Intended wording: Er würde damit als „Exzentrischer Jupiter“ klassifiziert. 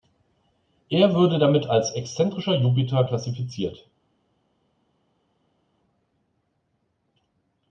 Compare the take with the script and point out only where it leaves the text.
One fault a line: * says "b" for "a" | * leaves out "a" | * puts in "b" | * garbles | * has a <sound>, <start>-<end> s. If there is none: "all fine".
all fine